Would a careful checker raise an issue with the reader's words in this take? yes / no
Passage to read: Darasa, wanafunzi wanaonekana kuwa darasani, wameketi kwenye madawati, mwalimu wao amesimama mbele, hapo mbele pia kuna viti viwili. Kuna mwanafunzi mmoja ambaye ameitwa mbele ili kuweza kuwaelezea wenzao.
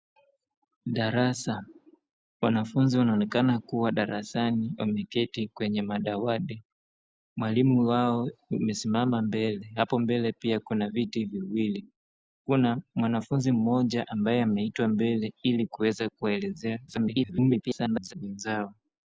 yes